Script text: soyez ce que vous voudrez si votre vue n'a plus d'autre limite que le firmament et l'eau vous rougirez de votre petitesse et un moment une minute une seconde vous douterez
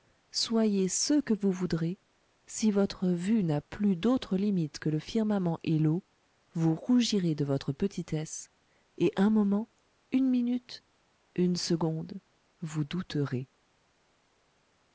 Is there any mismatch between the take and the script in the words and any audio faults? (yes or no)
no